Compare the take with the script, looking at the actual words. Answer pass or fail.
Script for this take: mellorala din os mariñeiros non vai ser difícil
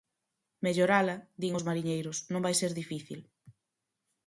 pass